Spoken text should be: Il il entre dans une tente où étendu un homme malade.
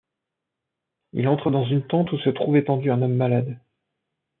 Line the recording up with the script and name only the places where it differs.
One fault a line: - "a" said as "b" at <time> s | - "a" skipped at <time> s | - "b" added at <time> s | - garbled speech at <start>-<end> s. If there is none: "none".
- "il" skipped at 1.3 s
- "se trouve" added at 2.2 s